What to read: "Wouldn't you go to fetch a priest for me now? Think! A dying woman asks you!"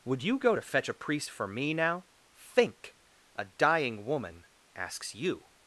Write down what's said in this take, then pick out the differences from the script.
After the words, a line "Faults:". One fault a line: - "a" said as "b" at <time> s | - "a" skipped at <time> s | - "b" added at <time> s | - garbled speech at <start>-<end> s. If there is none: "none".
"Would you go to fetch a priest for me now? Think! A dying woman asks you!"
Faults:
- "Wouldn't" said as "Would" at 0.0 s